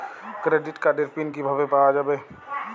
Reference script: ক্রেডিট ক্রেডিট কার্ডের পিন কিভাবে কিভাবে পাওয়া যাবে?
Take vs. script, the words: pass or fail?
fail